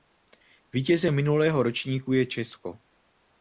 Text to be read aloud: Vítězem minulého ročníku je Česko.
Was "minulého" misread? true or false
false